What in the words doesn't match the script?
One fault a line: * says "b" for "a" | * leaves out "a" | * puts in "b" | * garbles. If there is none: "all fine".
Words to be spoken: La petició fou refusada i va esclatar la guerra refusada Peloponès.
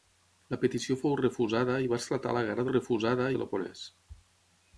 all fine